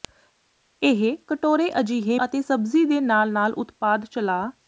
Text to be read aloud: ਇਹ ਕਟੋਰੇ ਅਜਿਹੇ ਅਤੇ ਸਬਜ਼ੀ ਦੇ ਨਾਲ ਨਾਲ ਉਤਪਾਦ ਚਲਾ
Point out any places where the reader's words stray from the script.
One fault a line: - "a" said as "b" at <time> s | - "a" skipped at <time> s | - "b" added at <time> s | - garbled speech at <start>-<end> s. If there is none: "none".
none